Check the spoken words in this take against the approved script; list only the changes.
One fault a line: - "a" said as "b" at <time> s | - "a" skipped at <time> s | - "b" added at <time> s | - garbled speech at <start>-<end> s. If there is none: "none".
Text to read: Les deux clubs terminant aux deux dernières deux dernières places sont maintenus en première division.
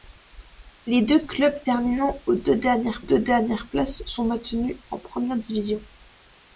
none